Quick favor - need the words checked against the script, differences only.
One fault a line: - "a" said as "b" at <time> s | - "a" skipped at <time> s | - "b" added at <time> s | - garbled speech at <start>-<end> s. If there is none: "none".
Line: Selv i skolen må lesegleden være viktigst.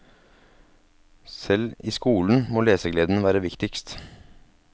none